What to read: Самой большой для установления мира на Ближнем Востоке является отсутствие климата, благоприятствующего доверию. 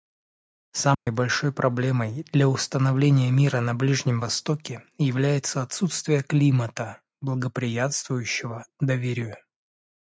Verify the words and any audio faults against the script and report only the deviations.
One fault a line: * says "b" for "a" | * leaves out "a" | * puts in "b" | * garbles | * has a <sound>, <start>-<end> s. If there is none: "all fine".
* has a dropout, 0.9-1.1 s
* puts in "проблемой"